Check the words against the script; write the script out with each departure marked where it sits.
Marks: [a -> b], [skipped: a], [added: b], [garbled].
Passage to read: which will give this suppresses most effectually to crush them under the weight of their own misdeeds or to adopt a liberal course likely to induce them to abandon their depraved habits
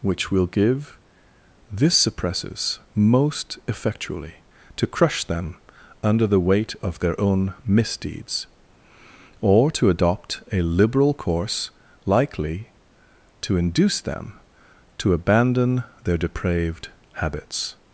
which will give this suppresses most effectually to crush them under the weight of their own misdeeds or to adopt a liberal course likely to induce them to abandon their depraved habits